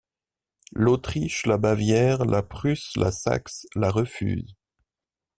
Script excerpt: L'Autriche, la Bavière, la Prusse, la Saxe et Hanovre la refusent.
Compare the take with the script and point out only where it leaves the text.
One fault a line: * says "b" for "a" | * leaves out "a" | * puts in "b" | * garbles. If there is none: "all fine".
* leaves out "et Hanovre"